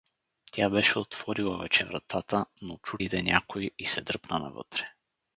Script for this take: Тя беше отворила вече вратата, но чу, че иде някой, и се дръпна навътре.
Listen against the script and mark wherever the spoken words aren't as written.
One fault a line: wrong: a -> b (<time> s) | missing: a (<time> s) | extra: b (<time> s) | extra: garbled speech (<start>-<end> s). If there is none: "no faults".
missing: че (3.0 s)